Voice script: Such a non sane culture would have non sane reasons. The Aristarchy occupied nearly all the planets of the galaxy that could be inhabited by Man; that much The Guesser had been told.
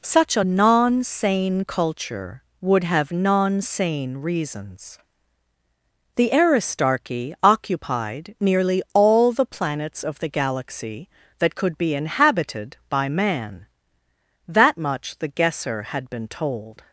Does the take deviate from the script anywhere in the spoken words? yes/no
no